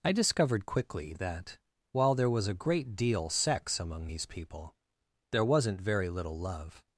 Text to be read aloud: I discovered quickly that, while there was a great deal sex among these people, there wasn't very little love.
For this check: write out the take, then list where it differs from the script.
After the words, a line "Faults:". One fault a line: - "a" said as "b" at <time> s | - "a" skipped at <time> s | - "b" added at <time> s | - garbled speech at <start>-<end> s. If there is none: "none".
I discovered quickly that, while there was a great deal sex among these people, there wasn't very little love.
Faults:
none